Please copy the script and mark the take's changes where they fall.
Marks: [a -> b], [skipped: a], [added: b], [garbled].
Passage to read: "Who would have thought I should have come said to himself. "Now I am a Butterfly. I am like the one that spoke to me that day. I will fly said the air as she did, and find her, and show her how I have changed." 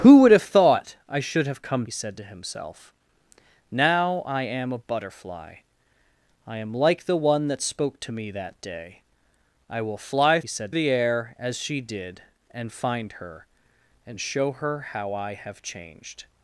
"Who would have thought I should have come said to himself. "Now I am a Butterfly. I am like the one that spoke to me that day. I will fly said the air as she did, and find her, and show her how I have changed."